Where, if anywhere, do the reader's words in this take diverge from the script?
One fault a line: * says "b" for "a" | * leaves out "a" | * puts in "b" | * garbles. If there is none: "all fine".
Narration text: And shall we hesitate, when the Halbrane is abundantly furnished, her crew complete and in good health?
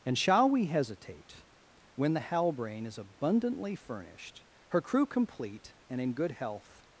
all fine